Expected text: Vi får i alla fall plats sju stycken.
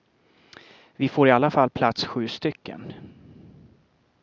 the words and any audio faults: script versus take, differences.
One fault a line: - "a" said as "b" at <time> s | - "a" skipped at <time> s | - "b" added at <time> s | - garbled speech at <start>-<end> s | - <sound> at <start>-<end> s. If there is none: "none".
none